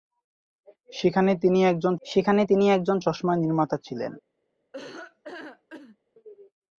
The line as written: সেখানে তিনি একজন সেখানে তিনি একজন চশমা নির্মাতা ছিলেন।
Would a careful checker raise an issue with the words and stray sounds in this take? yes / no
yes